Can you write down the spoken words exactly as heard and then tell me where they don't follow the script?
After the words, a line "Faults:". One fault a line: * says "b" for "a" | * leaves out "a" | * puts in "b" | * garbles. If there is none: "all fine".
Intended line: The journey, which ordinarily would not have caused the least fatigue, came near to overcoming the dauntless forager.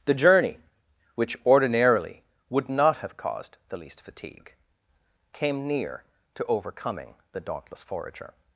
The journey, which ordinarily would not have caused the least fatigue, came near to overcoming the dauntless forager.
Faults:
all fine